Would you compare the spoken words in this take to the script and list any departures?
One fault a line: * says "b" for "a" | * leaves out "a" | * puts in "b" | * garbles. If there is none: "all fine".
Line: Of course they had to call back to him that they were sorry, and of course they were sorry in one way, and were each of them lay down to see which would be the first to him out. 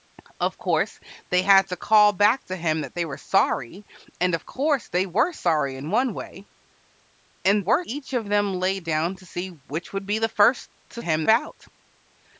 all fine